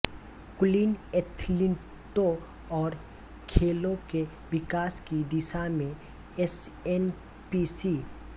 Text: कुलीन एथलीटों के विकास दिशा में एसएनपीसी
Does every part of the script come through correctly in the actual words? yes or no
no